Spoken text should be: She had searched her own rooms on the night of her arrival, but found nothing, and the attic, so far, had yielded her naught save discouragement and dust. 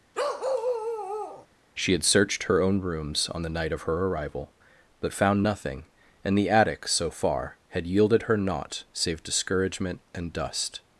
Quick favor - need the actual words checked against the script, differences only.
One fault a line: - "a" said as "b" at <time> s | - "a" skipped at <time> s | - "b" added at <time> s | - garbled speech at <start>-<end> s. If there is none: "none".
none